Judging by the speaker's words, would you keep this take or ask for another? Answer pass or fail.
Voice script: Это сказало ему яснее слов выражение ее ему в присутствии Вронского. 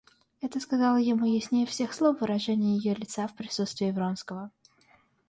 fail